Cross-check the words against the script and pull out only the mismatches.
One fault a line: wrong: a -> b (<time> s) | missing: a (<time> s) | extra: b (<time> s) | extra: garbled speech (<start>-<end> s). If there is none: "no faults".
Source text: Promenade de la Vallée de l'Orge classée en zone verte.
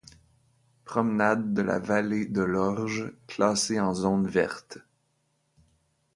no faults